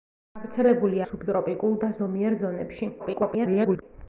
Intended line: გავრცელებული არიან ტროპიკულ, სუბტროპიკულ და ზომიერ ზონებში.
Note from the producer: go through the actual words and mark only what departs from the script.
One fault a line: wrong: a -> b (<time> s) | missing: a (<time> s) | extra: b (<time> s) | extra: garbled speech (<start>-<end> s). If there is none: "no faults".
missing: არიან ტროპიკულ (1.0 s)
extra: garbled speech (3.0-3.8 s)